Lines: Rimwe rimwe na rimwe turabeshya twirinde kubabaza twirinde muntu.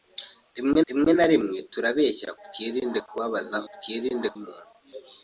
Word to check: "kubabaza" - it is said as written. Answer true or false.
true